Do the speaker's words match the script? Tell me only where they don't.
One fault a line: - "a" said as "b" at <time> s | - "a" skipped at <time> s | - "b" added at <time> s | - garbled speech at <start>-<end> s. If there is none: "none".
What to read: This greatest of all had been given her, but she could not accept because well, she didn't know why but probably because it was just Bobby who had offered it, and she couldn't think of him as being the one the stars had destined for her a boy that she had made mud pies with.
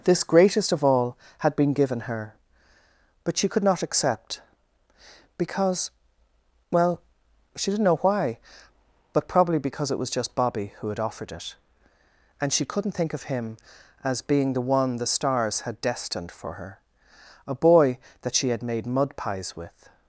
none